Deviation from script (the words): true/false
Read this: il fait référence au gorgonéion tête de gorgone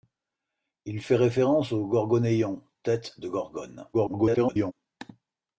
true